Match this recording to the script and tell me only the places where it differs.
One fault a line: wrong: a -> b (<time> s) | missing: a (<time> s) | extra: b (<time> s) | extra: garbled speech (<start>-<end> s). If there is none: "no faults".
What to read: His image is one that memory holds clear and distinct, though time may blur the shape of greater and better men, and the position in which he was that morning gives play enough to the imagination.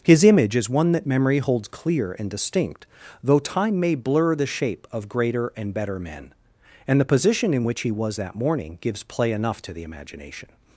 no faults